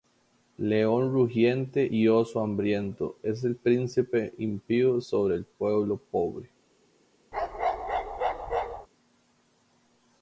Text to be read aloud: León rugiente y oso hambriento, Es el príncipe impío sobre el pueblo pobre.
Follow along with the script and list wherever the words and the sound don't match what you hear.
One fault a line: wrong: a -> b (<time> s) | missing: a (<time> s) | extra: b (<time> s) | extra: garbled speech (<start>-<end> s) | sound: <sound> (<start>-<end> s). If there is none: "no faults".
sound: bark (7.3-8.9 s)